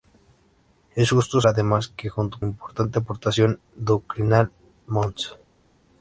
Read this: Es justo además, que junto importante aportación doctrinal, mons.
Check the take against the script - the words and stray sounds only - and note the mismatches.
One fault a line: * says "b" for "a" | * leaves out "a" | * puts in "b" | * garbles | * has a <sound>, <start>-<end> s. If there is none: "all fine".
all fine